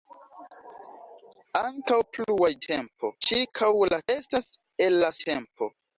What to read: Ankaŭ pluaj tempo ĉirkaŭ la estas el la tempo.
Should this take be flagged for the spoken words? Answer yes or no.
no